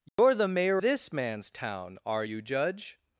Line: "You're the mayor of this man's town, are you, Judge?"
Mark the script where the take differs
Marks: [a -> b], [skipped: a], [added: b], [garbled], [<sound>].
"You're [dropout] the mayor [skipped: of] this man's town, are you, Judge?"